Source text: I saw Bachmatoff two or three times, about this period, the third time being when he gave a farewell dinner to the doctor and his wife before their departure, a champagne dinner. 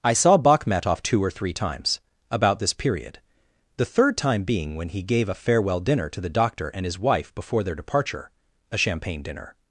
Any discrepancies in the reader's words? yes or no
no